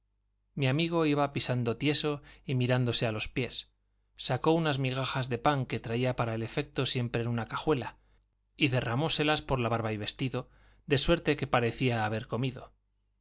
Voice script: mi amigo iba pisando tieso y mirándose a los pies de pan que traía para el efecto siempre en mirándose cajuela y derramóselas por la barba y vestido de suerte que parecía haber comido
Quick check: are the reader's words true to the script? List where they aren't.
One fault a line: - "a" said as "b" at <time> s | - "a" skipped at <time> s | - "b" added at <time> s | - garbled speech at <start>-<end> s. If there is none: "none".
- "sacó unas migajas" added at 4.2 s
- "mirándose" said as "una" at 7.3 s